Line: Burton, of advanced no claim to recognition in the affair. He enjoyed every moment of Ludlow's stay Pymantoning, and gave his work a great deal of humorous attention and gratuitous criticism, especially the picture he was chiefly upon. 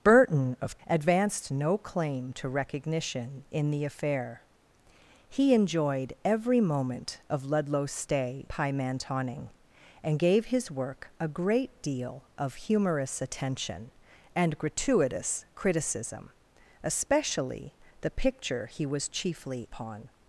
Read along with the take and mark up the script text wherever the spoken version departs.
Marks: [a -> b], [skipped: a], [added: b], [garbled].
Burton, of advanced no claim to recognition in the affair. He enjoyed every moment of Ludlow's stay Pymantoning, and gave his work a great deal of humorous attention and gratuitous criticism, especially the picture he was chiefly upon.